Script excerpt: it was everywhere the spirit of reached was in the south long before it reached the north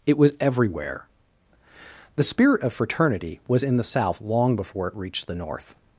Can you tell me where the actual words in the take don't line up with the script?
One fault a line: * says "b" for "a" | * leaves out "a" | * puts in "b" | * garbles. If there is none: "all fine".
* says "fraternity" for "reached"